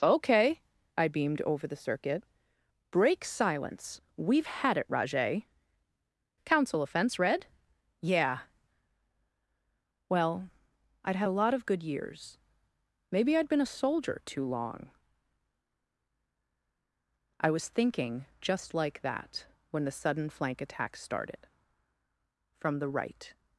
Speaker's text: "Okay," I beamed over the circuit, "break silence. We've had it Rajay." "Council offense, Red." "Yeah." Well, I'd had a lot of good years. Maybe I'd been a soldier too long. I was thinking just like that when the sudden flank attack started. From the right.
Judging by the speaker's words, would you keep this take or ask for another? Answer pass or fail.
pass